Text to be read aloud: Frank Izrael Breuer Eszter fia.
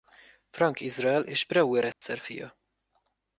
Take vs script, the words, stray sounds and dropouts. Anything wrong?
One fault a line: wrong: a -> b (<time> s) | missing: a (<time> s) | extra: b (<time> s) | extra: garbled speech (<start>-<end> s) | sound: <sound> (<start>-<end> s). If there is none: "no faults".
extra: és (1.2 s)
sound: dropout (1.9-2.0 s)